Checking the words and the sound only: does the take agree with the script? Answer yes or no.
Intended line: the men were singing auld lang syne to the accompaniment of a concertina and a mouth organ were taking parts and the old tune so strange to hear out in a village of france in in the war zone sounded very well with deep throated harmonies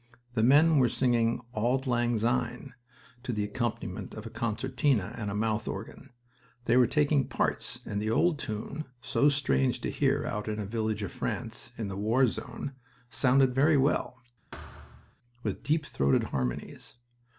no